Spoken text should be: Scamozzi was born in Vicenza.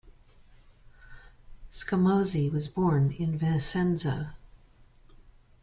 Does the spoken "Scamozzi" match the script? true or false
true